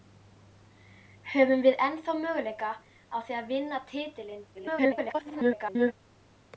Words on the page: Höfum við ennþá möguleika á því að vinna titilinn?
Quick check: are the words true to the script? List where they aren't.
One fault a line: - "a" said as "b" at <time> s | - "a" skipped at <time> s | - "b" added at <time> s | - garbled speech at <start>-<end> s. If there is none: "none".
- garbled speech at 4.5-5.9 s